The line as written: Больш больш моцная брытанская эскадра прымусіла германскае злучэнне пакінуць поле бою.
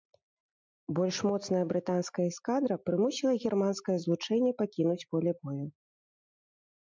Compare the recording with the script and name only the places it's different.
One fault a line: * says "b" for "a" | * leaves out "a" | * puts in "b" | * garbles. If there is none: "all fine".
* leaves out "больш"